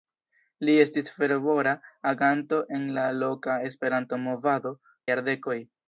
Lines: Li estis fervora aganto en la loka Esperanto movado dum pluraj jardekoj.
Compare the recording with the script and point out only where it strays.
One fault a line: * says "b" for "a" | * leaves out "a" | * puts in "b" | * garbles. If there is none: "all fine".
* leaves out "dum pluraj"